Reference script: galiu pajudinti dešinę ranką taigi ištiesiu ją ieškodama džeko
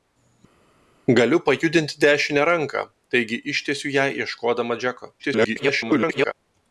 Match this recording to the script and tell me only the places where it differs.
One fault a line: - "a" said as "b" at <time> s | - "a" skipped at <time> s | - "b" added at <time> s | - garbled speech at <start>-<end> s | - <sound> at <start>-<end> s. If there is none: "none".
- garbled speech at 5.2-6.3 s